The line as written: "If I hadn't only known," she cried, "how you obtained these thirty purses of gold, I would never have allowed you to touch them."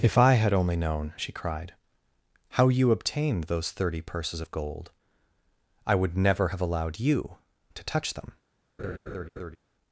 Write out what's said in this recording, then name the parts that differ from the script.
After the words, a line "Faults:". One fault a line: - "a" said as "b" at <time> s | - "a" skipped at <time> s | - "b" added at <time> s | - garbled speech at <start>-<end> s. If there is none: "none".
"If I had only known," she cried, "how you obtained those thirty purses of gold, I would never have allowed you to touch them."
Faults:
- "hadn't" said as "had" at 0.3 s
- "these" said as "those" at 3.4 s